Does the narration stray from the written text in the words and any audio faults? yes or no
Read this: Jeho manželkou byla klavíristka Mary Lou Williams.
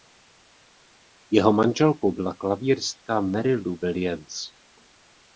no